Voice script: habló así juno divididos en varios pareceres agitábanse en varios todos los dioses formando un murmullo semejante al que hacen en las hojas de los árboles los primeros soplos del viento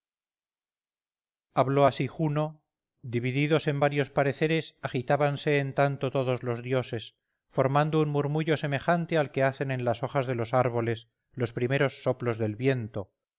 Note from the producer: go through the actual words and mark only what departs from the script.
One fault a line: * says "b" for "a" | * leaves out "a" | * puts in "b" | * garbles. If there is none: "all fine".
* says "tanto" for "varios"